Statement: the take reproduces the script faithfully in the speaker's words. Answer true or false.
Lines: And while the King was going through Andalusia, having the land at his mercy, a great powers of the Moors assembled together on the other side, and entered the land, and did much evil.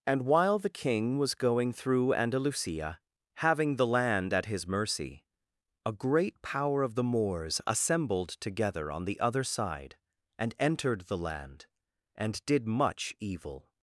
false